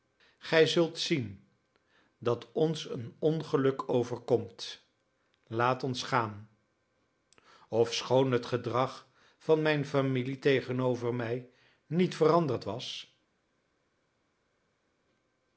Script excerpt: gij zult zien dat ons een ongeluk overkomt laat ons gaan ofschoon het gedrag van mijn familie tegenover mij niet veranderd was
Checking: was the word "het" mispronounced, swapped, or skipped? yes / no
no